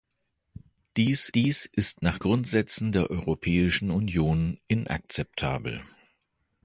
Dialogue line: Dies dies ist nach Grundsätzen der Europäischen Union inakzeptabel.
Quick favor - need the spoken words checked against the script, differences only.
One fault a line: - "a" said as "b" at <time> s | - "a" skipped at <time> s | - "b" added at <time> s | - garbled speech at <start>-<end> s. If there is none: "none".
none